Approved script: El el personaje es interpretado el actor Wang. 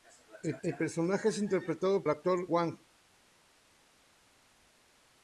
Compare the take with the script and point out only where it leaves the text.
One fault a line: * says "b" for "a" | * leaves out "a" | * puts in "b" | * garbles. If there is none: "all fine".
all fine